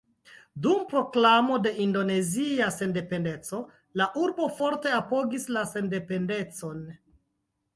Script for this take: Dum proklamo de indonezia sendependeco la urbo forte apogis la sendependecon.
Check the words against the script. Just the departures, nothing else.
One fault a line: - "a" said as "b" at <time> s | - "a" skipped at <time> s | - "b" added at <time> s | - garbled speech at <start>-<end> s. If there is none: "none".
none